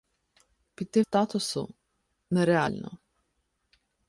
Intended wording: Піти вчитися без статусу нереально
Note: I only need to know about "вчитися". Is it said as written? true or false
false